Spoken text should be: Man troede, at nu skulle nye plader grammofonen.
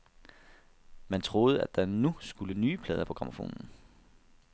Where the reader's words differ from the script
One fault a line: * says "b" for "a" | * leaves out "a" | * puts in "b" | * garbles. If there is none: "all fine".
* puts in "der"
* puts in "på"